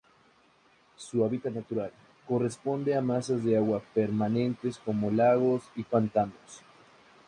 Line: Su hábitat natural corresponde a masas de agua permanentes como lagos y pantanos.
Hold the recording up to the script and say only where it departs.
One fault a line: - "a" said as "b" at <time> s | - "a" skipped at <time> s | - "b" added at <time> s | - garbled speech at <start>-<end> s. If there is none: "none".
none